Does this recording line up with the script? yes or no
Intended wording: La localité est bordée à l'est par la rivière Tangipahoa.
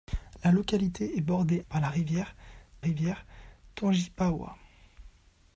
no